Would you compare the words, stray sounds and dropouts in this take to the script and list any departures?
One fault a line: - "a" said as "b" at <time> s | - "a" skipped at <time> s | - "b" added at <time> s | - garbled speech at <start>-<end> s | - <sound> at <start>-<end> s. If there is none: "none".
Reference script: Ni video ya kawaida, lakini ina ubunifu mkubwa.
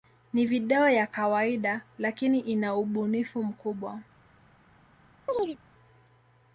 - chirp at 5.3-5.6 s